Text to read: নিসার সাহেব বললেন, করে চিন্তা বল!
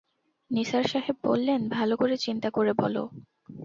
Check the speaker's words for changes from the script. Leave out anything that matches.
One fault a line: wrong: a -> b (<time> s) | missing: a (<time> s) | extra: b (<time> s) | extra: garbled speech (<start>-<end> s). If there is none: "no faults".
extra: ভালো (1.7 s)
extra: করে (2.5 s)